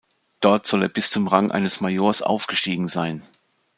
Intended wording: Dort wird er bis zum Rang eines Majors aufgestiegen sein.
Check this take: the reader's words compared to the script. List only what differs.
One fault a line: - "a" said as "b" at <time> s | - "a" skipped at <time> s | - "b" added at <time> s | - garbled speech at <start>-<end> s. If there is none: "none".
- "wird" said as "soll" at 0.7 s